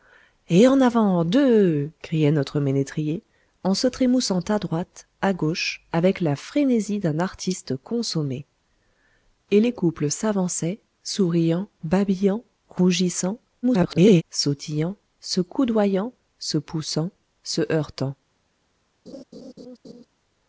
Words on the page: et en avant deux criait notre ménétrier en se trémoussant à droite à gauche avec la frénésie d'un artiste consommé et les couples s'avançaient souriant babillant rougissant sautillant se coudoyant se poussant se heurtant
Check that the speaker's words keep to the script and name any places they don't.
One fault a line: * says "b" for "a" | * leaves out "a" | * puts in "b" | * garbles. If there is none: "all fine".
* garbles